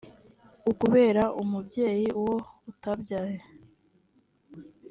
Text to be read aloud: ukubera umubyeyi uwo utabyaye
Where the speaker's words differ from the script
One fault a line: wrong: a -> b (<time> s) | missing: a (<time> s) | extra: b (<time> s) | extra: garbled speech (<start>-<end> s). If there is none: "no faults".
no faults